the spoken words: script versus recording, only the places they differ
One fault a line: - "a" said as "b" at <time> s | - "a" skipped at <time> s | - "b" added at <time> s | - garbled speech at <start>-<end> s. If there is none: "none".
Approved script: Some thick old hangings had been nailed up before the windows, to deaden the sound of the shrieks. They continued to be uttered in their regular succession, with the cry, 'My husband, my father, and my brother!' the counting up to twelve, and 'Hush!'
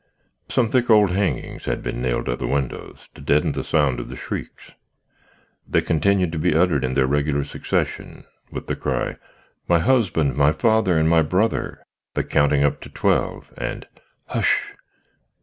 - "before" skipped at 2.4 s